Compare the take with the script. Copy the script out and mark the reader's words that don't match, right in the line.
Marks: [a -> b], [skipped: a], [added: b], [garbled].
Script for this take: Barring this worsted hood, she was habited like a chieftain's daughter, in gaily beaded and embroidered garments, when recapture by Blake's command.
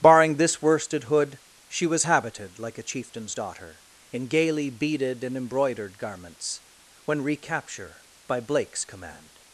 Barring this worsted hood, she was habited like a chieftain's daughter, in gaily beaded and embroidered garments, when recapture by Blake's command.